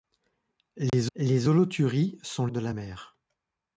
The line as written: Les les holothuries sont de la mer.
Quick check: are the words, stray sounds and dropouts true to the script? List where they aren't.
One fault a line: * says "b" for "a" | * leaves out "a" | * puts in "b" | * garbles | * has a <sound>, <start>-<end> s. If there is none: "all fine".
* has a dropout, 0.9-0.9 s